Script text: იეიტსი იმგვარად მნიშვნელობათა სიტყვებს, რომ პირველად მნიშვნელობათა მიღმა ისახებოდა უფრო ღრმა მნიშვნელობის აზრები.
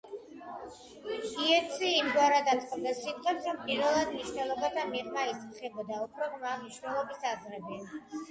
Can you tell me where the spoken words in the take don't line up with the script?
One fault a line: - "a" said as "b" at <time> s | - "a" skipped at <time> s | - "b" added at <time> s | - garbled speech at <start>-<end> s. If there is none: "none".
- "მნიშვნელობათა" said as "აწყობდა" at 2.5 s